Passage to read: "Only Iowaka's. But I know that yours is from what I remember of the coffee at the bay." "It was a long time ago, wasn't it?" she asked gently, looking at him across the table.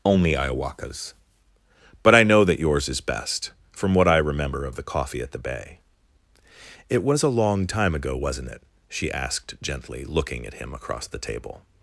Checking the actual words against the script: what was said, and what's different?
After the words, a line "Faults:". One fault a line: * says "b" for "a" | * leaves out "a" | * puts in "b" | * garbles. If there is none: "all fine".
"Only Iowaka's. But I know that yours is best, from what I remember of the coffee at the bay." "It was a long time ago, wasn't it?" she asked gently, looking at him across the table.
Faults:
* puts in "best"